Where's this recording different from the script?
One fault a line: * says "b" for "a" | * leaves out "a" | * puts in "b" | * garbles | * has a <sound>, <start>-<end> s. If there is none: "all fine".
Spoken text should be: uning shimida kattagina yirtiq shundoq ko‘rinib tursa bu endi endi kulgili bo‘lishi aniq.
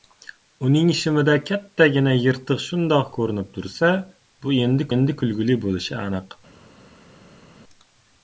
all fine